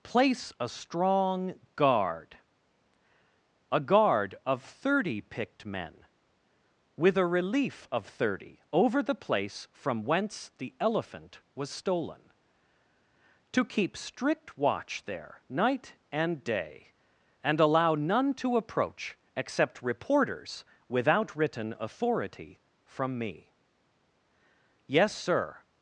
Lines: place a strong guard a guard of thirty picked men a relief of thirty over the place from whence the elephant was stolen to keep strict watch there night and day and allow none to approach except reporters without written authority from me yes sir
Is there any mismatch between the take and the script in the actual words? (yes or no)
yes